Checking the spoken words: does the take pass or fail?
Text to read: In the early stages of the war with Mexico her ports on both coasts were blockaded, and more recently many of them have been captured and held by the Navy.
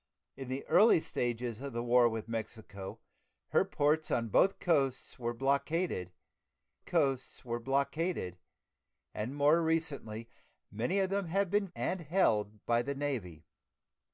fail